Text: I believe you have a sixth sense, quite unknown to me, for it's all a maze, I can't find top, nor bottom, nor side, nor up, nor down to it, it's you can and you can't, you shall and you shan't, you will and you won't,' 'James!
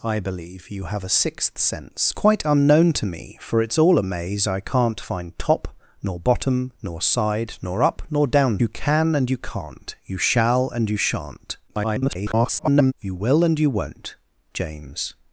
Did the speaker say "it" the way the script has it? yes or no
no